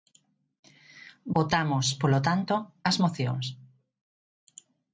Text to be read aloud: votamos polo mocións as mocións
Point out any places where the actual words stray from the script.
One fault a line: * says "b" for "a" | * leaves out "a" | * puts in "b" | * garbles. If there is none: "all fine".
* says "tanto" for "mocións"